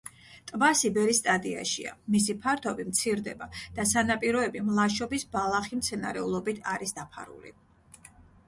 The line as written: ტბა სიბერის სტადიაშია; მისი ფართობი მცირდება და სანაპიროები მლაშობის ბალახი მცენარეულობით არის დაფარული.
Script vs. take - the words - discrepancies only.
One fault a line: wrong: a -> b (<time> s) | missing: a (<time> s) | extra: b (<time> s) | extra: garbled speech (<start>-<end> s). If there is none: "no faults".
no faults